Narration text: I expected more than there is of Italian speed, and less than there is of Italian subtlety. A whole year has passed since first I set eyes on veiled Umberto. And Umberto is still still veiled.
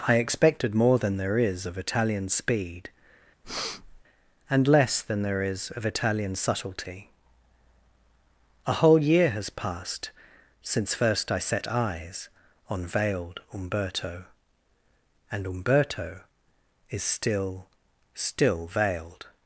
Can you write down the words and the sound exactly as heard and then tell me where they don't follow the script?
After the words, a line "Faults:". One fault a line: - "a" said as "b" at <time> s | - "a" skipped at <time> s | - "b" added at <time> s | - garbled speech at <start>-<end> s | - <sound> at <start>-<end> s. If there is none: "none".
I expected more than there is of Italian speed, and less than there is of Italian subtlety. A whole year has passed since first I set eyes on veiled Umberto. And Umberto is still still veiled.
Faults:
- breath at 3.4-4.0 s